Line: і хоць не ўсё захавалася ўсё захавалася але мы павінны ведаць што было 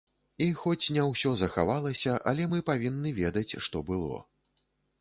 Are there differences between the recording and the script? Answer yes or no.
yes